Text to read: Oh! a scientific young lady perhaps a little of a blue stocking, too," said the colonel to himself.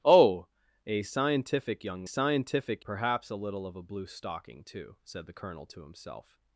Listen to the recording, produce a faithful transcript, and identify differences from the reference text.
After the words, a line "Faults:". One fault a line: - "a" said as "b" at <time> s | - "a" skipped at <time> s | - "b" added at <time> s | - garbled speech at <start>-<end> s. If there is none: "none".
Oh! a scientific young scientific perhaps a little of a blue stocking, too," said the colonel to himself.
Faults:
- "lady" said as "scientific" at 2.0 s